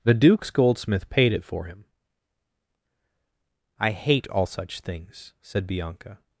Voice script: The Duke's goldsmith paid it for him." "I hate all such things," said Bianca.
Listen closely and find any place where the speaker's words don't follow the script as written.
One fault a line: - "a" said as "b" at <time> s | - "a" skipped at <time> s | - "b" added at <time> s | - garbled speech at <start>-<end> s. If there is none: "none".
none